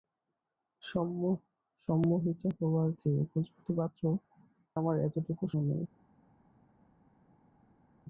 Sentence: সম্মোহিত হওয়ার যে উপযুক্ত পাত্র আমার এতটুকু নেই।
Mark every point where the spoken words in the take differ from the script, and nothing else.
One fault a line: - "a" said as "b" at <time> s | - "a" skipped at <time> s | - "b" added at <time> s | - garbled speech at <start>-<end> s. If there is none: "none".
none